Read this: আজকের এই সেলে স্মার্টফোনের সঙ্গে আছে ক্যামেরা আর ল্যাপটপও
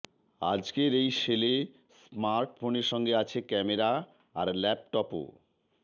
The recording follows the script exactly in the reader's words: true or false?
true